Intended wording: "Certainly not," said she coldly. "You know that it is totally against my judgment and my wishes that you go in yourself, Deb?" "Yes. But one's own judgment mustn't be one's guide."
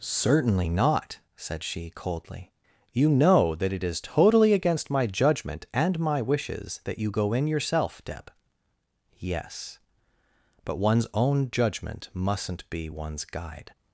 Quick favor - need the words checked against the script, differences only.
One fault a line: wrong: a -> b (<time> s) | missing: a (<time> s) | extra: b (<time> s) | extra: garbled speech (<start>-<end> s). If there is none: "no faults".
no faults